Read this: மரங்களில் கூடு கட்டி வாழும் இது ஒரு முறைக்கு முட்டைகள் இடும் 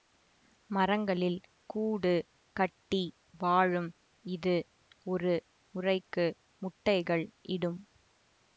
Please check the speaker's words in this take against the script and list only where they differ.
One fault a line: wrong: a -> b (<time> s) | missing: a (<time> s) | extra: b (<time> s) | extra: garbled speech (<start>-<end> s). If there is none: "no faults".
no faults